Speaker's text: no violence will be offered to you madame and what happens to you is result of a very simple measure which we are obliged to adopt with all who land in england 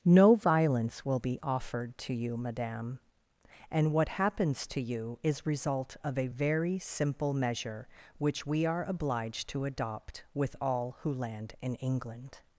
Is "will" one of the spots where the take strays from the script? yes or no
no